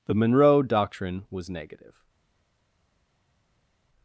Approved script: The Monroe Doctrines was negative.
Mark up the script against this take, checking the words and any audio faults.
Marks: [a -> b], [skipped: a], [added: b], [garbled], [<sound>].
The Monroe [Doctrines -> Doctrine] was negative.